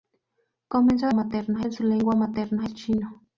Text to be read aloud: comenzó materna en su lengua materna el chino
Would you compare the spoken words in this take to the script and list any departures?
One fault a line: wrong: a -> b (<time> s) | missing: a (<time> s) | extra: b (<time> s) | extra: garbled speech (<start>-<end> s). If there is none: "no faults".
no faults